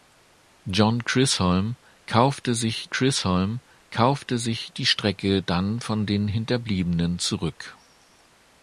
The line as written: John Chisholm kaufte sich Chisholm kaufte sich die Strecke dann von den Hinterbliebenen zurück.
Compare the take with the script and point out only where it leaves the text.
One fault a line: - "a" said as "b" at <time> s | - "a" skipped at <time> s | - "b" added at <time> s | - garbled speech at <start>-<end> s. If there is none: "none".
none